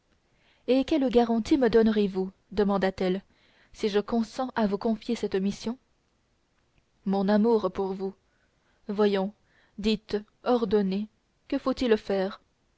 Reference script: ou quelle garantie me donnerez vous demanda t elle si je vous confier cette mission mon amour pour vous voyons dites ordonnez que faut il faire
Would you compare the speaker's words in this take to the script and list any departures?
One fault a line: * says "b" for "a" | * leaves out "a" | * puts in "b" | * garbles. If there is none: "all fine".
* says "et" for "ou"
* puts in "consens à"